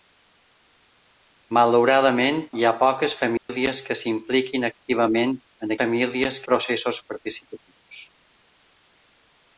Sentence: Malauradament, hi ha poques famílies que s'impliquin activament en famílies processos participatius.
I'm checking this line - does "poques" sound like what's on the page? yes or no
yes